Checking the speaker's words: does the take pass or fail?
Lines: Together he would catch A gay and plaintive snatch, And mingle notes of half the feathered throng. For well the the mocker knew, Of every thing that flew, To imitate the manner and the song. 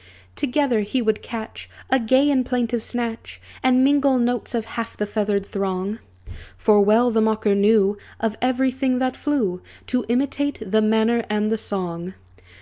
fail